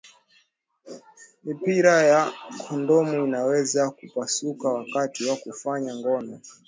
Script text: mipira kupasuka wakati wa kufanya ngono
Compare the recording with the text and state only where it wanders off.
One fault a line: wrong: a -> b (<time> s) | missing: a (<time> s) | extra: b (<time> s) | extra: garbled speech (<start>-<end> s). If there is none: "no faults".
extra: ya kondomu inaweza (2.0 s)